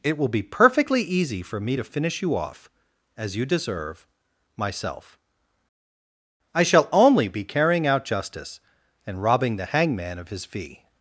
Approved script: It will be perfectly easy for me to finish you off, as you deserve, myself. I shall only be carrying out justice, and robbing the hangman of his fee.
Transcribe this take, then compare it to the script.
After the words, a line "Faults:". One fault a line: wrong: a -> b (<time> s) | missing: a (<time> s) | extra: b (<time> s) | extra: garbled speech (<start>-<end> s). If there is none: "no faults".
It will be perfectly easy for me to finish you off, as you deserve, myself. I shall only be carrying out justice, and robbing the hangman of his fee.
Faults:
no faults